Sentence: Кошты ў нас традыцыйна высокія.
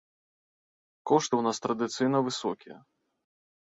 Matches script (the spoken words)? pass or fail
pass